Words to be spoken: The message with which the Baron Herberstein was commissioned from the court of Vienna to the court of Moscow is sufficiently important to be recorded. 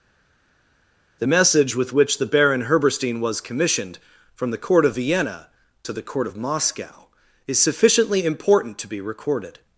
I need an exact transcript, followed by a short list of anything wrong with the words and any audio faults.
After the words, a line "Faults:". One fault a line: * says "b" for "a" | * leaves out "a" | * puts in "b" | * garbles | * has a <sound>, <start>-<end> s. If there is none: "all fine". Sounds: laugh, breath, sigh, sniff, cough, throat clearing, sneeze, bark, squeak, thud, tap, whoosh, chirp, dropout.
The message with which the Baron Herberstein was commissioned from the court of Vienna to the court of Moscow is sufficiently important to be recorded.
Faults:
all fine